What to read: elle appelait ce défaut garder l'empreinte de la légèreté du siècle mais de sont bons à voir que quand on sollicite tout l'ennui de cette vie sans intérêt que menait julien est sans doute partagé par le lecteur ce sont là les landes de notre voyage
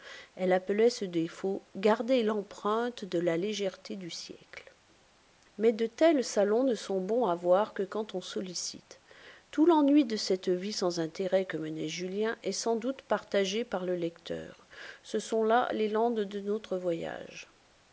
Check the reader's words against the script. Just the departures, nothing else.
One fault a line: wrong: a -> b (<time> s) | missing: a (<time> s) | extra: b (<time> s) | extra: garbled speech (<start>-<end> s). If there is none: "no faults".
extra: tels salons ne (5.8 s)